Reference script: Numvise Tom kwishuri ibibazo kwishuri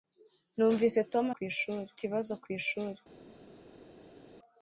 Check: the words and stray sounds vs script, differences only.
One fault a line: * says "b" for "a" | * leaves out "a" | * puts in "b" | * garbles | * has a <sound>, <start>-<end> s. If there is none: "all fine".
all fine